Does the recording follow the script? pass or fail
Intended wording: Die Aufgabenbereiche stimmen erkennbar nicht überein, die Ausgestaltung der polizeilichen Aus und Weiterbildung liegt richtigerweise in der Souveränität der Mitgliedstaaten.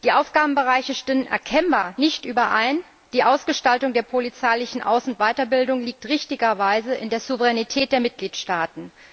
pass